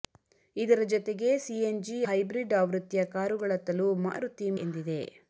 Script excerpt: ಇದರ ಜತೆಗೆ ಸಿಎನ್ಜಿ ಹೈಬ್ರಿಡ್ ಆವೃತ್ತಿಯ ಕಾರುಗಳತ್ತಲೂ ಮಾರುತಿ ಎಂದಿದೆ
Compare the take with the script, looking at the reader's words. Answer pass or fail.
pass